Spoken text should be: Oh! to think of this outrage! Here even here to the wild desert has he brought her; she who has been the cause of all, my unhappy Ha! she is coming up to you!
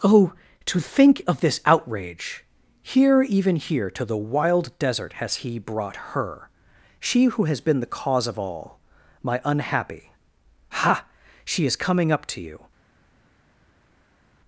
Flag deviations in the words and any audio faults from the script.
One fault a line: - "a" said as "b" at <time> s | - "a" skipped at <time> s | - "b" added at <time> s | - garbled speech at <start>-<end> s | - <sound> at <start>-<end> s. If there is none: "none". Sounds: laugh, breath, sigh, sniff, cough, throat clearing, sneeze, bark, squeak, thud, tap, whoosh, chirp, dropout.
none